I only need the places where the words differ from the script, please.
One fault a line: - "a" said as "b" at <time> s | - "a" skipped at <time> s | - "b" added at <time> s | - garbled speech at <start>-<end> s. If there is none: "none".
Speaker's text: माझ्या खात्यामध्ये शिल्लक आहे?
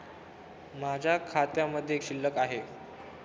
none